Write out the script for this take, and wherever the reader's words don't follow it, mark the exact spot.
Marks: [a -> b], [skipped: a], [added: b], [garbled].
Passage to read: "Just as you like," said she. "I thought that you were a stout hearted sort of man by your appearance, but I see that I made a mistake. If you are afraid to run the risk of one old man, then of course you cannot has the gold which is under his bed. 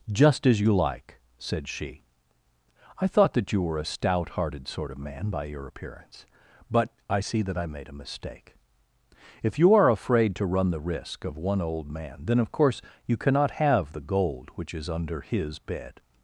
"Just as you like," said she. "I thought that you were a stout hearted sort of man by your appearance, but I see that I made a mistake. If you are afraid to run the risk of one old man, then of course you cannot [has -> have] the gold which is under his bed.